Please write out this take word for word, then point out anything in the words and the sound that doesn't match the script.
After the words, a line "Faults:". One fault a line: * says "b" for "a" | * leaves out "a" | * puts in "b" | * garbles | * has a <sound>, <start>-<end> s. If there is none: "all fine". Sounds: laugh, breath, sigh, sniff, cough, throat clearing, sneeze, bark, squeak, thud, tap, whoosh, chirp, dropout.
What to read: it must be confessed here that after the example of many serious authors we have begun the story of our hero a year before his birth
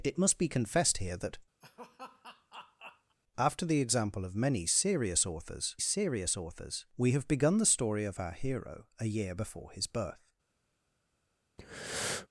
it must be confessed here that after the example of many serious authors serious authors we have begun the story of our hero a year before his birth
Faults:
* has a laugh, 1.6-3.2 s
* puts in "serious authors"
* has a breath, 11.6-12.3 s